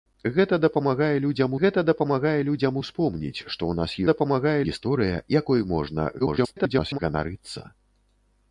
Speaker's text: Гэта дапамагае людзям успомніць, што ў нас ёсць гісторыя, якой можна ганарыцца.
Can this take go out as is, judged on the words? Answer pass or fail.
fail